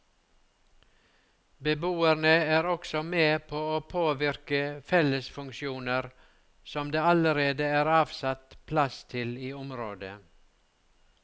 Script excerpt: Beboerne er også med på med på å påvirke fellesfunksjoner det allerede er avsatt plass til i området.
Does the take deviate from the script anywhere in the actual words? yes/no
yes